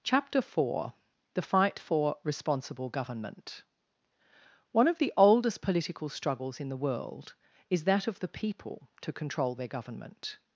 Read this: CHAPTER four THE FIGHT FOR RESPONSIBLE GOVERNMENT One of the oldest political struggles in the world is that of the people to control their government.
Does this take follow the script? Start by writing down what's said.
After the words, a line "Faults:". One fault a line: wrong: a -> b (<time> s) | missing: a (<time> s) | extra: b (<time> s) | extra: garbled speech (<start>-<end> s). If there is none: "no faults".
CHAPTER four THE FIGHT FOR RESPONSIBLE GOVERNMENT One of the oldest political struggles in the world is that of the people to control their government.
Faults:
no faults